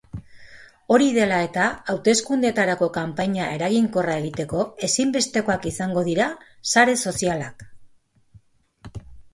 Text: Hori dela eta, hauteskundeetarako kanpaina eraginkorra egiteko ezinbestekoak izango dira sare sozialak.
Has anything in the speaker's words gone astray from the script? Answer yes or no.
no